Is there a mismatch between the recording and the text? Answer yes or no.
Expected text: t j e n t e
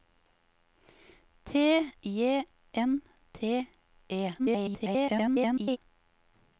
yes